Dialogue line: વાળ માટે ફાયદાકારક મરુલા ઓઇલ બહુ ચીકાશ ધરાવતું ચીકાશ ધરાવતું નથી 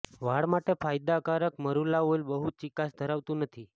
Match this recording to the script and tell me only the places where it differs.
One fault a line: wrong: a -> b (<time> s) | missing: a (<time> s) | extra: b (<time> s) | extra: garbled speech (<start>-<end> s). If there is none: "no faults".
missing: ચીકાશ ધરાવતું (3.5 s)